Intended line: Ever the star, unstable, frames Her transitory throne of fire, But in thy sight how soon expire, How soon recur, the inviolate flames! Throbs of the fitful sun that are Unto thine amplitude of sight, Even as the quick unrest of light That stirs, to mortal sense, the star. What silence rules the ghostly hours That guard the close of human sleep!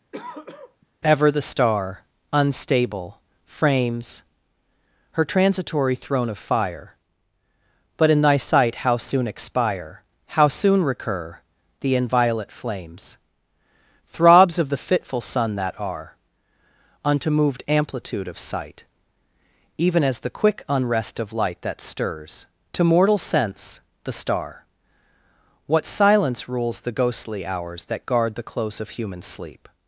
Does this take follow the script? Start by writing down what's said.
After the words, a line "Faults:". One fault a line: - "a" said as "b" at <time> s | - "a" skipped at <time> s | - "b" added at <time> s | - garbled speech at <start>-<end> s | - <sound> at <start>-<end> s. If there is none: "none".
Ever the star, unstable, frames Her transitory throne of fire, But in thy sight how soon expire, How soon recur, the inviolate flames! Throbs of the fitful sun that are Unto moved amplitude of sight, Even as the quick unrest of light That stirs, to mortal sense, the star. What silence rules the ghostly hours That guard the close of human sleep!
Faults:
- throat clearing at 0.1-0.9 s
- "thine" said as "moved" at 17.3 s